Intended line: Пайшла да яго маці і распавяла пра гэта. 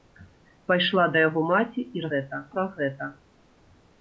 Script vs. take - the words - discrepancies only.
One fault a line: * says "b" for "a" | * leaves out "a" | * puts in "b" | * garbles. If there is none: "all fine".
* says "гэта" for "распавяла"